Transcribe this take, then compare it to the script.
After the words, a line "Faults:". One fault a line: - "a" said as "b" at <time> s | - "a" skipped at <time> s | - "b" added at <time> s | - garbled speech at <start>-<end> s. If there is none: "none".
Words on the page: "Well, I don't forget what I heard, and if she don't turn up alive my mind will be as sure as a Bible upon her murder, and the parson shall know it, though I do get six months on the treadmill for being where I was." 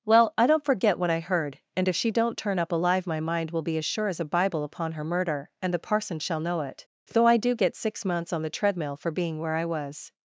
"Well, I don't forget what I heard, and if she don't turn up alive my mind will be as sure as a Bible upon her murder, and the parson shall know it, though I do get six months on the treadmill for being where I was."
Faults:
none